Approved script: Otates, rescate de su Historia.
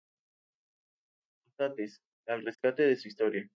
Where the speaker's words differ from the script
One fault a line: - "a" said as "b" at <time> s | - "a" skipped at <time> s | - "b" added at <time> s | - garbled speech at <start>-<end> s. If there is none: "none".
- "al" added at 2.2 s